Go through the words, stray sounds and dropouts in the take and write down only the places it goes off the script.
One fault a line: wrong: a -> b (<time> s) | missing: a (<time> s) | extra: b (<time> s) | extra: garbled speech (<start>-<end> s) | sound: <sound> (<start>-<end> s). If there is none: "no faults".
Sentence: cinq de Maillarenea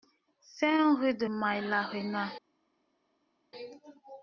extra: rue (1.0 s)